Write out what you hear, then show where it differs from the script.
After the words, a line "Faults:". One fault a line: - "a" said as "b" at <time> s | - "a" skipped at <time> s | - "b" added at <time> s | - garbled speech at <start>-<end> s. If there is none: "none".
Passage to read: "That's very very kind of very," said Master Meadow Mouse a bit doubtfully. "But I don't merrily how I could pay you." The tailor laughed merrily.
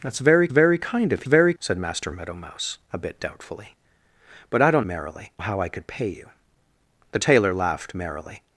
"That's very very kind of very," said Master Meadow Mouse a bit doubtfully. "But I don't merrily how I could pay you." The tailor laughed merrily.
Faults:
none